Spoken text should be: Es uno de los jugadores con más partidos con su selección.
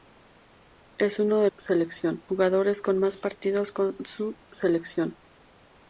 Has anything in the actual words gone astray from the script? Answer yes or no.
yes